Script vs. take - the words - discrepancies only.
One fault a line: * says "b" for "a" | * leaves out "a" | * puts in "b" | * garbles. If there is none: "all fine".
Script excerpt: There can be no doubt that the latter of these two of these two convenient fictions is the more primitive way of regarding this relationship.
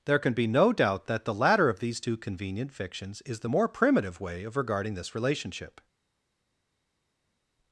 * leaves out "of these two"